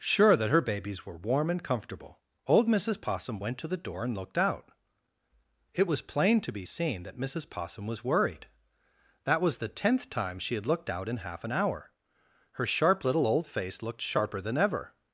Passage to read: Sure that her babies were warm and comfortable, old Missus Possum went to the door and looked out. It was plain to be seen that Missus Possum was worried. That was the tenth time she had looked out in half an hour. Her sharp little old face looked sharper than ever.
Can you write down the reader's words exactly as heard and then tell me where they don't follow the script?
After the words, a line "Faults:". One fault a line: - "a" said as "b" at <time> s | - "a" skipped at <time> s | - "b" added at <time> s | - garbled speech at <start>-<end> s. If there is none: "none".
Sure that her babies were warm and comfortable, old Missus Possum went to the door and looked out. It was plain to be seen that Missus Possum was worried. That was the tenth time she had looked out in half an hour. Her sharp little old face looked sharper than ever.
Faults:
none